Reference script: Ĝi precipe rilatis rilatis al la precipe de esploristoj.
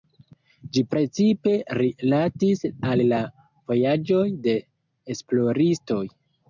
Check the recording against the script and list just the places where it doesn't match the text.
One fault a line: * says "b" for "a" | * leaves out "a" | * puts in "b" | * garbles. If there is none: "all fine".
* leaves out "rilatis"
* says "vojaĝoj" for "precipe"